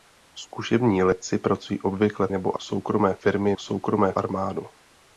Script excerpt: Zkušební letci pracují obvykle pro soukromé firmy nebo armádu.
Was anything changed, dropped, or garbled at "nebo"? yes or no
yes